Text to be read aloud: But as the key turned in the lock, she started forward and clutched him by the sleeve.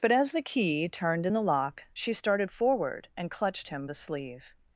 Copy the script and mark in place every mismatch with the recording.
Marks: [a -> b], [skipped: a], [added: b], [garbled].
But as the key turned in the lock, she started forward and clutched him [skipped: by] the sleeve.